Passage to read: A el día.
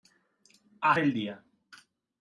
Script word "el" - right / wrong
right